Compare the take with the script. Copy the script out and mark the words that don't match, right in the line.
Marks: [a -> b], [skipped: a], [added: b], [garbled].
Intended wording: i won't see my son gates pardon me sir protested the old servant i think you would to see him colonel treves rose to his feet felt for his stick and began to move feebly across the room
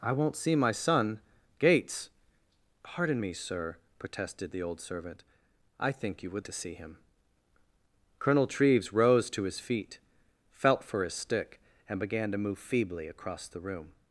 i won't see my son gates pardon me sir protested the old servant i think you would to see him colonel treves rose to his feet felt for his stick and began to move feebly across the room